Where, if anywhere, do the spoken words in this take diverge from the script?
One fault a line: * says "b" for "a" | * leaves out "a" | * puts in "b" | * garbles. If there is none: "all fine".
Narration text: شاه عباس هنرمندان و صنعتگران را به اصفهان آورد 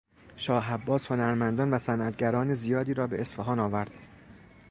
* puts in "زیادی"